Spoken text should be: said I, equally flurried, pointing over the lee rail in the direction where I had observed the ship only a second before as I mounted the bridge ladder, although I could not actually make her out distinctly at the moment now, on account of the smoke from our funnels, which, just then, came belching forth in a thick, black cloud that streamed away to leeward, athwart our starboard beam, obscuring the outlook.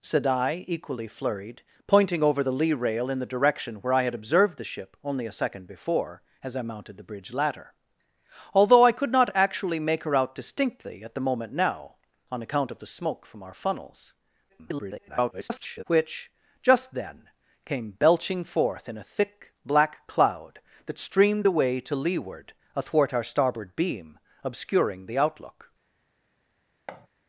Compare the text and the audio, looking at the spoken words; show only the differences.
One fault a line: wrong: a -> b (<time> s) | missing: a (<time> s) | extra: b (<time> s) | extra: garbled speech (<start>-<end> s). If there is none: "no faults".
extra: garbled speech (14.5-15.8 s)